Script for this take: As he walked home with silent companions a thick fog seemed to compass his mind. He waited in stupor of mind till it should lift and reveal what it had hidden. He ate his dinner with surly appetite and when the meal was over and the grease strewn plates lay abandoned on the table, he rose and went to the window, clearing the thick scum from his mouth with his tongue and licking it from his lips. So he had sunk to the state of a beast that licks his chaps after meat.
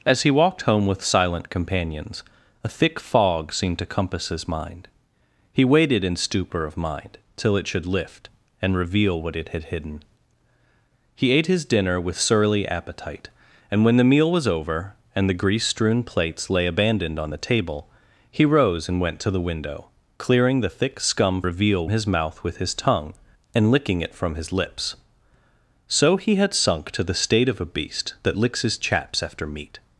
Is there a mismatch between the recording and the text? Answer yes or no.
yes